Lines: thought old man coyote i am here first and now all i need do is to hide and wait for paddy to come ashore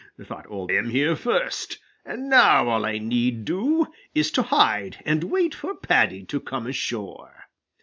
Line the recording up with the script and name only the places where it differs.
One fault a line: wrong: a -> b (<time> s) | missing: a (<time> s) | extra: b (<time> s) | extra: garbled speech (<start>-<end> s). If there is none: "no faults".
missing: man coyote i (0.7 s)